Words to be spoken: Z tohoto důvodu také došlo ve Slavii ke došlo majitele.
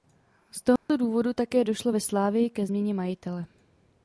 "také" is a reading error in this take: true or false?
false